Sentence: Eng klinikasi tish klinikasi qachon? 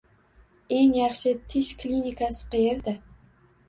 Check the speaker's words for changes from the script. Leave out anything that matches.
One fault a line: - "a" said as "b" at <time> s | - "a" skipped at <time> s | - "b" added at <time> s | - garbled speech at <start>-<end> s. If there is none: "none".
- "klinikasi" said as "yaxshi" at 1.0 s
- "qachon" said as "qayerda" at 2.5 s